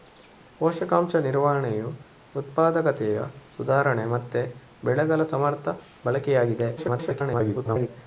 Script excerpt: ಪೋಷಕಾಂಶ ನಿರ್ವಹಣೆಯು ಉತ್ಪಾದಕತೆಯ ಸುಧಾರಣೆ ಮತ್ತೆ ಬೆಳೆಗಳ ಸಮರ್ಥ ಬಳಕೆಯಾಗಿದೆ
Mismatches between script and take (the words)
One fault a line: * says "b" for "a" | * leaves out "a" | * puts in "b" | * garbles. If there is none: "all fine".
* garbles